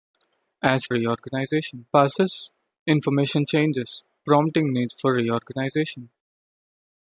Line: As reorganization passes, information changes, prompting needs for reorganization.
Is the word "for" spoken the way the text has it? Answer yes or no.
yes